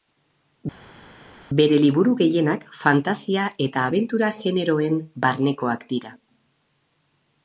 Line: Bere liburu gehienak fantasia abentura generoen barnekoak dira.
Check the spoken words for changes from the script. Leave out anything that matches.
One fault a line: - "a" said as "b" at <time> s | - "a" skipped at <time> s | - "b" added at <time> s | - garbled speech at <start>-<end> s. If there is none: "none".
- "eta" added at 3.7 s